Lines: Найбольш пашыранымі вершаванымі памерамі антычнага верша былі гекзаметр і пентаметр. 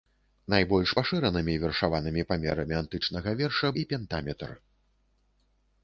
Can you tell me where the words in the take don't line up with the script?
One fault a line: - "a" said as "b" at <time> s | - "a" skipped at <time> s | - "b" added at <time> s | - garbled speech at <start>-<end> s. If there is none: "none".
- "былі гекзаметр" skipped at 3.7 s